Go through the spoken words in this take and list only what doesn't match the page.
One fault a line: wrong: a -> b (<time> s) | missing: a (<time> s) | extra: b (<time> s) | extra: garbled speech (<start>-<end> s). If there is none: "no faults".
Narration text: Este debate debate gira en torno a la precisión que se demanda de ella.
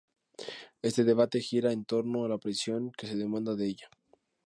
missing: debate (1.4 s)